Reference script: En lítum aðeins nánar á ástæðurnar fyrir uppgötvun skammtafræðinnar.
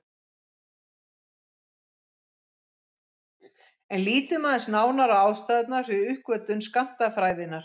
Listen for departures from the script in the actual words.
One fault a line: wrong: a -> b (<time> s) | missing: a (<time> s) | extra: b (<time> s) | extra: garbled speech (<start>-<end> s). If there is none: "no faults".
no faults